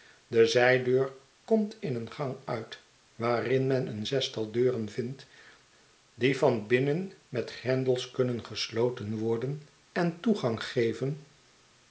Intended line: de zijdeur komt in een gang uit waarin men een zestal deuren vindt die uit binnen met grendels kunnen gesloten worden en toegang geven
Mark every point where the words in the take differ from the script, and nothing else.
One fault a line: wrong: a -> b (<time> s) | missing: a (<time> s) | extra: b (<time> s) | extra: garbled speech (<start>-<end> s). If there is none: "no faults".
wrong: uit -> van (6.4 s)